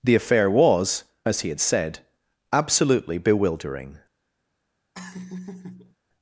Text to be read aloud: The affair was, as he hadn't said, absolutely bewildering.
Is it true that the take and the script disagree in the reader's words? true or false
true